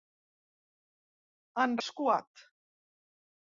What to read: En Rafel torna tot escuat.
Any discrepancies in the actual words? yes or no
yes